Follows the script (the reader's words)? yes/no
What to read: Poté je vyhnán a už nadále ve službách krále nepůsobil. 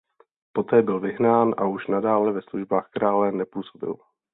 no